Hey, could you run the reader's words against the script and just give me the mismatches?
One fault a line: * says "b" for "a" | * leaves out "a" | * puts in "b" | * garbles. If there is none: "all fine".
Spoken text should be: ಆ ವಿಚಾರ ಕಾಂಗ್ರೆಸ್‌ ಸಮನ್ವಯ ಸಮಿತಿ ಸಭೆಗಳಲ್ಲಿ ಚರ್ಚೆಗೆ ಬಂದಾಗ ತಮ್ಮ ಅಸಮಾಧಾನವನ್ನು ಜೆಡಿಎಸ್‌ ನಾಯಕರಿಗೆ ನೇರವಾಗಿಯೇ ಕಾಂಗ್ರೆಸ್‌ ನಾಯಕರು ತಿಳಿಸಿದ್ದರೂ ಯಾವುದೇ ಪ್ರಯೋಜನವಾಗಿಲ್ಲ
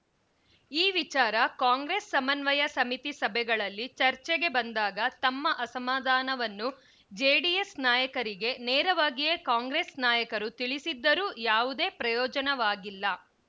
* says "ಈ" for "ಆ"